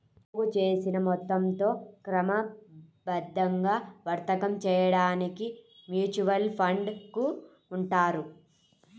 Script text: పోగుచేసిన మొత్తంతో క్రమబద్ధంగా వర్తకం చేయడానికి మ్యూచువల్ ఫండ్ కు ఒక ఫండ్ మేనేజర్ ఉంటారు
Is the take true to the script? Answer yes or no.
no